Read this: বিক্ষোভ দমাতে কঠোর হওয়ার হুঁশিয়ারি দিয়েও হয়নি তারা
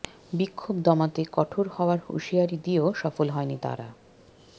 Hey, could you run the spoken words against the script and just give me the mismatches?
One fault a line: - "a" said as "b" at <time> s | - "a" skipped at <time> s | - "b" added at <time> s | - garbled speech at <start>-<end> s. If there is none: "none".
- "সফল" added at 3.0 s